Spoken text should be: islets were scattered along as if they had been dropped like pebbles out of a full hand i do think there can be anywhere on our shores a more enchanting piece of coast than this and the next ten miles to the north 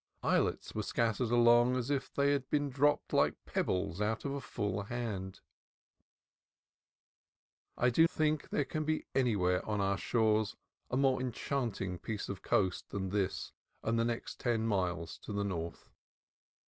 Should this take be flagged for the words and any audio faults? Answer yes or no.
no